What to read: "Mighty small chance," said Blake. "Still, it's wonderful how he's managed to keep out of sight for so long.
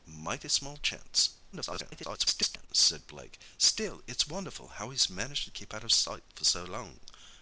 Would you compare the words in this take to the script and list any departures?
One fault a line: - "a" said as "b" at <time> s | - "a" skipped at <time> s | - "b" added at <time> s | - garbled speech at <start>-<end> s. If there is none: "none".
- garbled speech at 1.5-2.7 s